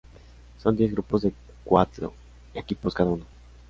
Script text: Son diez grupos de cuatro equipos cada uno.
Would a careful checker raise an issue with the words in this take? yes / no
no